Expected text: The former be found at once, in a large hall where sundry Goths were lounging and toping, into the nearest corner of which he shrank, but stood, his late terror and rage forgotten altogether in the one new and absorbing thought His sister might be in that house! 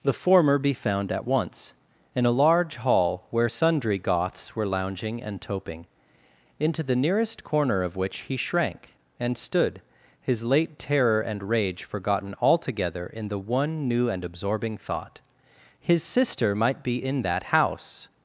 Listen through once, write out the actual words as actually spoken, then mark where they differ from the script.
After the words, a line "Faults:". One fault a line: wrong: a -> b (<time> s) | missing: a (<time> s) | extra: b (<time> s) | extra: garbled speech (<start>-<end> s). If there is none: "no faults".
The former be found at once, in a large hall where sundry Goths were lounging and toping, into the nearest corner of which he shrank, and stood, his late terror and rage forgotten altogether in the one new and absorbing thought His sister might be in that house!
Faults:
wrong: but -> and (9.2 s)